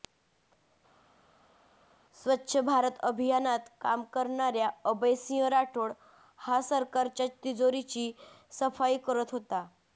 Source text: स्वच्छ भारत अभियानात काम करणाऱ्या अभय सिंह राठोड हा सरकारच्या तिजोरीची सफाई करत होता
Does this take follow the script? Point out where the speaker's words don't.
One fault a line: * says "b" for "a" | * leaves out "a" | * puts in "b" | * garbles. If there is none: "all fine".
all fine